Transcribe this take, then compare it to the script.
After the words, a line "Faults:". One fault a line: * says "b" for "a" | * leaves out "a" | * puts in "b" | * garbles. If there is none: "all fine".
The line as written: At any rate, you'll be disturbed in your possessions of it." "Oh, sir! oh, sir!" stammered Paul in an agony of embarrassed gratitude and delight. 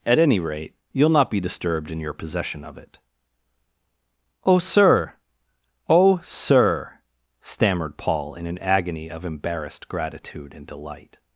At any rate, you'll not be disturbed in your possession of it." "Oh, sir! oh, sir!" stammered Paul in an agony of embarrassed gratitude and delight.
Faults:
* puts in "not"
* says "possession" for "possessions"